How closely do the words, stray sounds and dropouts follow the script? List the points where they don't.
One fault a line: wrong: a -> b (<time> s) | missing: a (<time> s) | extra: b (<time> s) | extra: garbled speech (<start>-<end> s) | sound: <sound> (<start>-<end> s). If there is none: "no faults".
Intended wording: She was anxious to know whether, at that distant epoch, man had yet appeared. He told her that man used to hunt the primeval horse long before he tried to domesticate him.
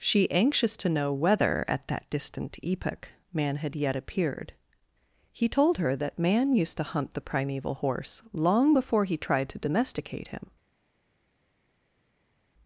missing: was (0.3 s)